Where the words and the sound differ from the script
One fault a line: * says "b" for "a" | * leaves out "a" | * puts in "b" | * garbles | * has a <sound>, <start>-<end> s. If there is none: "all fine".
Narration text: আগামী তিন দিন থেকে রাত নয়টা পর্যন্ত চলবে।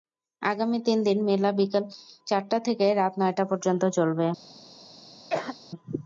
* puts in "মেলা বিকেল চারটা"
* has a cough, 5.3-5.6 s